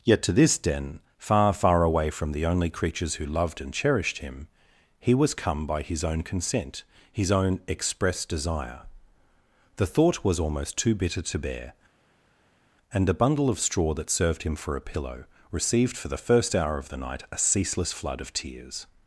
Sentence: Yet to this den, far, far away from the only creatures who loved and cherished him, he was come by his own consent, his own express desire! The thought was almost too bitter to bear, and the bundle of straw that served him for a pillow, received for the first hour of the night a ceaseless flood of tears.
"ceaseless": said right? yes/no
yes